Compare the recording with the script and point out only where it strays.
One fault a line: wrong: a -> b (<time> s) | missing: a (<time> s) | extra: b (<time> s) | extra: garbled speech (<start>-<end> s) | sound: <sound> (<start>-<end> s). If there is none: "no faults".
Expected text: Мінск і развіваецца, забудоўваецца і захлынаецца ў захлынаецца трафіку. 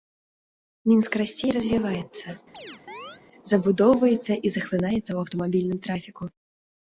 extra: расце (1.2 s)
sound: chirp (2.5-3.2 s)
wrong: захлынаецца -> аўтамабільным (5.2 s)